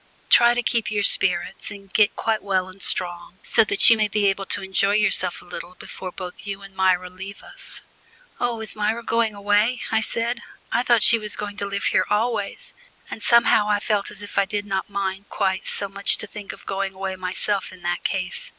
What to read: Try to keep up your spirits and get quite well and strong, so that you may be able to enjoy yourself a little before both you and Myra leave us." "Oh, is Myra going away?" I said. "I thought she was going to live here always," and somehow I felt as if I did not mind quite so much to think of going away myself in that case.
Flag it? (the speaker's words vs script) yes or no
no